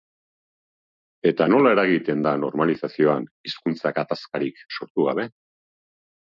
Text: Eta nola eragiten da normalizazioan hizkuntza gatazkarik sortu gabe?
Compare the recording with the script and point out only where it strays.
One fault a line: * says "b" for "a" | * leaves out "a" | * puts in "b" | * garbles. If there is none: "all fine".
all fine